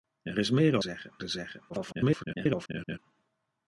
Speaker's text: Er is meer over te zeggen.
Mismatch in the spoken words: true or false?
true